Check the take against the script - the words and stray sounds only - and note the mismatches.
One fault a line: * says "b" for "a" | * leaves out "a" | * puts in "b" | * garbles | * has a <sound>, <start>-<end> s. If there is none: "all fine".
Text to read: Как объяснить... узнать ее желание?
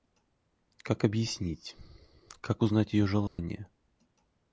* puts in "как"
* has a dropout, 3.3-3.4 s